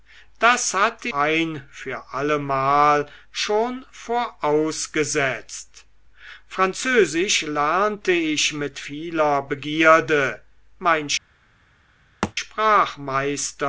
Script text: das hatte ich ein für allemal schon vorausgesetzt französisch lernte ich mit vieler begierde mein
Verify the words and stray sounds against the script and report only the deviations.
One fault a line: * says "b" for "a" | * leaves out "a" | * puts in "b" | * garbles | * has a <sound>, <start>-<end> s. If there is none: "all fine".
* leaves out "ich"
* has a thud, 12.2-12.3 s